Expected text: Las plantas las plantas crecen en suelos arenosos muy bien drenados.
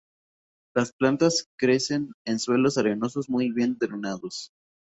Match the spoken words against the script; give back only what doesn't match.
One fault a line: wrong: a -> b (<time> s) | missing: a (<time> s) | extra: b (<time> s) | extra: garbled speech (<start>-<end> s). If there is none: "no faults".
missing: las plantas (1.4 s)